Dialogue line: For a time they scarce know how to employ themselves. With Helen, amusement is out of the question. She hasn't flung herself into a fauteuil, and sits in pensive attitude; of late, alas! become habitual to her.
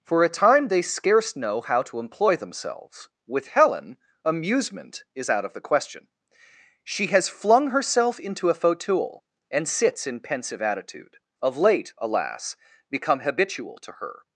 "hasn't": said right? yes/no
no